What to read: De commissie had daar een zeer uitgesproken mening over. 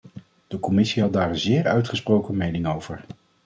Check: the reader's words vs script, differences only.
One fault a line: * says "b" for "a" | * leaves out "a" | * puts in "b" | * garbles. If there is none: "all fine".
all fine